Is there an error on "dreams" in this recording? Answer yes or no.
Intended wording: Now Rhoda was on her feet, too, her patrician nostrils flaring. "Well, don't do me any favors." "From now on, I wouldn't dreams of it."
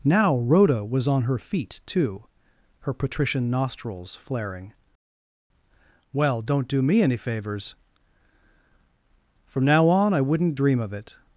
yes